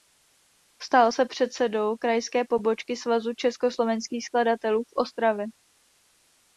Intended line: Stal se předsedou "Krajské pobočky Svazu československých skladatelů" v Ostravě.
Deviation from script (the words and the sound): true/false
false